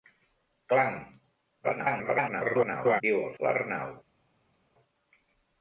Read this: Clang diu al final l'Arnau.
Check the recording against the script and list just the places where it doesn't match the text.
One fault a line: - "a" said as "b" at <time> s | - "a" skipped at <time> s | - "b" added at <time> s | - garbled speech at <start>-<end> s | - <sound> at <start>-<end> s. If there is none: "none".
- garbled speech at 1.6-3.0 s
- "final" skipped at 3.3 s